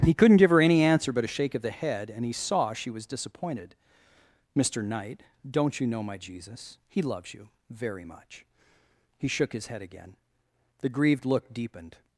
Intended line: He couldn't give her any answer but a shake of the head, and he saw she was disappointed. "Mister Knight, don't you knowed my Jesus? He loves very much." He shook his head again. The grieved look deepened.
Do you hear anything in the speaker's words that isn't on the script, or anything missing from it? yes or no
yes